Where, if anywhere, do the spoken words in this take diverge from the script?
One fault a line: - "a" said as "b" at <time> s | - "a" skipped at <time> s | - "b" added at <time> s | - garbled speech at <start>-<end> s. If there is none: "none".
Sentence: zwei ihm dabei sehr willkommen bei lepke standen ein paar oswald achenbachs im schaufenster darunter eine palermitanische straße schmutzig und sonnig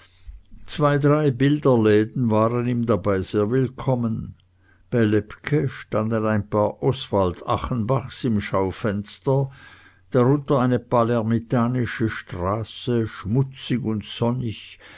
- "drei bilderläden waren" added at 1.0 s